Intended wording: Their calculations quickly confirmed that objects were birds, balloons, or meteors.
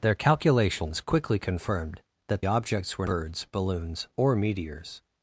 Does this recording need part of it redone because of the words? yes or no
no